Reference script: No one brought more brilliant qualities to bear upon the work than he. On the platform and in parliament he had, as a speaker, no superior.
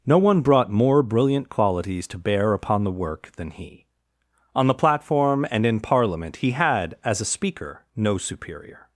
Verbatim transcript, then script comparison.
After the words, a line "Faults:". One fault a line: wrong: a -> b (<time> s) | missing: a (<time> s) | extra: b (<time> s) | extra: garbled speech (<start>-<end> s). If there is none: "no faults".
No one brought more brilliant qualities to bear upon the work than he. On the platform and in parliament he had, as a speaker, no superior.
Faults:
no faults